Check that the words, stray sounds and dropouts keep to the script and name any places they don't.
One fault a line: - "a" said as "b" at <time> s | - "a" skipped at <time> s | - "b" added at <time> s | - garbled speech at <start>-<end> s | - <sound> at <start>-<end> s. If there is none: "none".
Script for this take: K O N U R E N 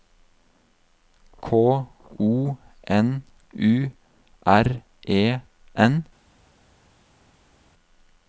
none